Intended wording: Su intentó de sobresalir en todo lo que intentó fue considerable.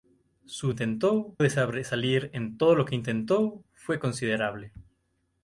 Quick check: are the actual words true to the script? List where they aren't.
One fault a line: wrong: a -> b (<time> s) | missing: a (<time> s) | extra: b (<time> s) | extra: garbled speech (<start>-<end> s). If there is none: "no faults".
no faults